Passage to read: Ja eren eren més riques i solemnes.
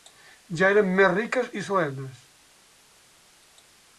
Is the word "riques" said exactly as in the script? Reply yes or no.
yes